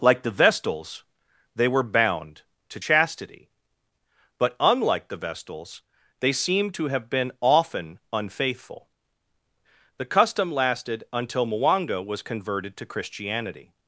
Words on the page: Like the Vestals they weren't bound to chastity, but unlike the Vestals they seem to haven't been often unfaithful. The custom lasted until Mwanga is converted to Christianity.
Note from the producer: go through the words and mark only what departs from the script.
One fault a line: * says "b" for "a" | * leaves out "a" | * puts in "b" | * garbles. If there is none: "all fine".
* says "were" for "weren't"
* says "have" for "haven't"
* says "was" for "is"